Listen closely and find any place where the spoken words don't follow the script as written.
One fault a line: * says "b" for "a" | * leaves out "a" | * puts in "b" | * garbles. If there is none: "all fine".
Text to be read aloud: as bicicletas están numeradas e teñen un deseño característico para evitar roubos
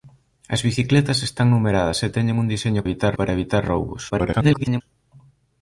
* says "evitar" for "característico"
* garbles